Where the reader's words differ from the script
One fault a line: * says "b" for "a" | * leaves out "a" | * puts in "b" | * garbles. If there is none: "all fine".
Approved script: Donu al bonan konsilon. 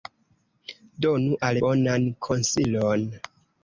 all fine